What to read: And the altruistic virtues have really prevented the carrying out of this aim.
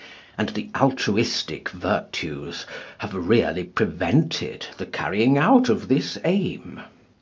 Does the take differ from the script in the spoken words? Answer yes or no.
no